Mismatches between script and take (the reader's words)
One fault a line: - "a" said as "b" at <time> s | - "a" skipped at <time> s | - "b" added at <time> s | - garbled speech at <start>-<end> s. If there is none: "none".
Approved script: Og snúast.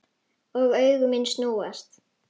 - "augu mín" added at 0.8 s